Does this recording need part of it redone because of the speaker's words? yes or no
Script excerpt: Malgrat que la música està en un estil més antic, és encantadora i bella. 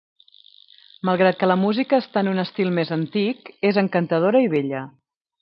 no